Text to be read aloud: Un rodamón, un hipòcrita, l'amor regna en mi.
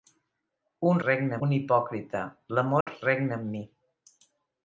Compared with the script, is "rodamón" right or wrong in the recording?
wrong